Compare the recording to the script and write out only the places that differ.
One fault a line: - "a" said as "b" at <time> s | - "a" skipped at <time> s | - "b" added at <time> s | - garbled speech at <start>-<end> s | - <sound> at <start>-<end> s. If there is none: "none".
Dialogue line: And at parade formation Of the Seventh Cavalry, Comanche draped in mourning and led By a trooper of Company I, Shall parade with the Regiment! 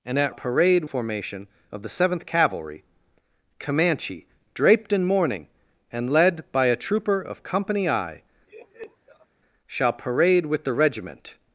- laugh at 8.5-9.3 s